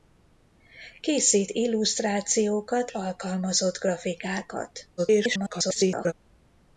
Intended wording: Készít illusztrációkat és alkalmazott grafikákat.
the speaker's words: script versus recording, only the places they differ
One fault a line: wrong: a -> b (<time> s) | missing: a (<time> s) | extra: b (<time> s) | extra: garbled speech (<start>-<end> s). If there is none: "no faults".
missing: és (2.9 s)
extra: garbled speech (5.0-6.1 s)